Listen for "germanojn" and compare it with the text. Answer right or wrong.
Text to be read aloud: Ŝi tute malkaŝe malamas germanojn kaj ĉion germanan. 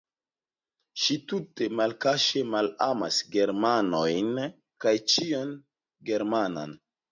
right